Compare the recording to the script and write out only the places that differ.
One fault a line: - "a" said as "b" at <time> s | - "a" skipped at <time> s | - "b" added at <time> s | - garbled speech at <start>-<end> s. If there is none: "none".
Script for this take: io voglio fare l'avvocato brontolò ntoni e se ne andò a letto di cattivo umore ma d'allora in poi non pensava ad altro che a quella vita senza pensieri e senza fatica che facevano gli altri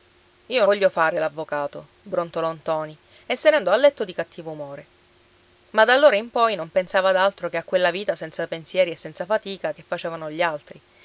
none